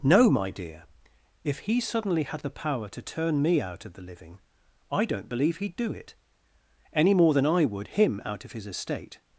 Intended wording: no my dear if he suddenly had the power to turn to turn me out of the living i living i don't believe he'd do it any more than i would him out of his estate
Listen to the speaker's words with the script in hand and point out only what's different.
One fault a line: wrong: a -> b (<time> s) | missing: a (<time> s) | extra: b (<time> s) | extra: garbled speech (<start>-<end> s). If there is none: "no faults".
missing: to turn (3.4 s)
missing: living i (5.1 s)